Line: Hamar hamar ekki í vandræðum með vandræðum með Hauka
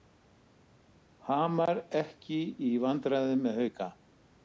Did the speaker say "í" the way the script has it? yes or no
yes